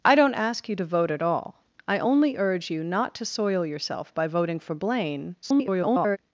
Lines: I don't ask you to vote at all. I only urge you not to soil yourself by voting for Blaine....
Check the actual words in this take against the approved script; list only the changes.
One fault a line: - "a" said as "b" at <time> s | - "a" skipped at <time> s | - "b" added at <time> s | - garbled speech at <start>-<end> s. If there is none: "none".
- garbled speech at 5.4-6.2 s